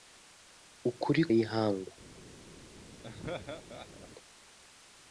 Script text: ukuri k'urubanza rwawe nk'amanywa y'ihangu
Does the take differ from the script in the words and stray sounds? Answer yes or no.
yes